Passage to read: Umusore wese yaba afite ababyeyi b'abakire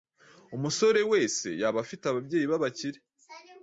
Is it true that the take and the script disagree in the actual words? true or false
false